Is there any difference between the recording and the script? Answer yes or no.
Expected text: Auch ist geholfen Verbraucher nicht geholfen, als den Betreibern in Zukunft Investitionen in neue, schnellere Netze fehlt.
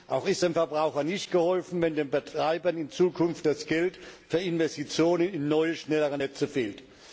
yes